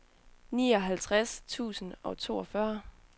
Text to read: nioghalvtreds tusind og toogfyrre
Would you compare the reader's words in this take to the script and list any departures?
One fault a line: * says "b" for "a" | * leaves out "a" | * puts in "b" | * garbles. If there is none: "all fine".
all fine